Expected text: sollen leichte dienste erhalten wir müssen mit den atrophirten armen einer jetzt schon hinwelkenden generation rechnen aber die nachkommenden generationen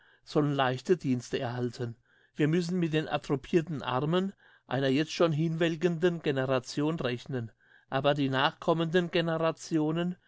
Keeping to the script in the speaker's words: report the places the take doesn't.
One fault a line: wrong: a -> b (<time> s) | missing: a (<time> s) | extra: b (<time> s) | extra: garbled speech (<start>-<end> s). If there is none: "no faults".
no faults